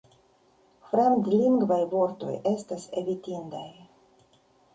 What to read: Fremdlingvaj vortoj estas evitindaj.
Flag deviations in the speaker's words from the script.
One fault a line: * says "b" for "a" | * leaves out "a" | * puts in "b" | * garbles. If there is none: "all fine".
all fine